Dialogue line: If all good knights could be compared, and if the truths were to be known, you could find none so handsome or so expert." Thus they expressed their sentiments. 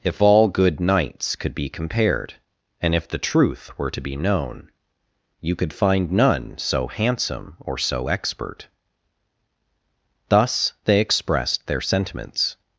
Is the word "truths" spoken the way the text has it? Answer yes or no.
no